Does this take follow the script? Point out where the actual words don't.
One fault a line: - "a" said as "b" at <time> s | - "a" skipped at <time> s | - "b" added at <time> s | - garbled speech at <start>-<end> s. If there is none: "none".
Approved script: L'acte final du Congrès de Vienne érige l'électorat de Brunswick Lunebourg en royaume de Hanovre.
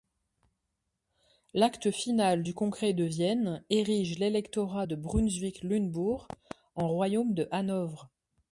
none